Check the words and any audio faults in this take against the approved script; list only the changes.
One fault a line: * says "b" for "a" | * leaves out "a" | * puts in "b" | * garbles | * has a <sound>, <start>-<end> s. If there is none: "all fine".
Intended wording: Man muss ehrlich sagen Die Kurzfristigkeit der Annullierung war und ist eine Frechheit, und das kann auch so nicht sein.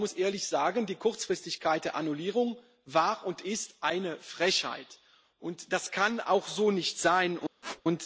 * has a squeak, 7.6-7.8 s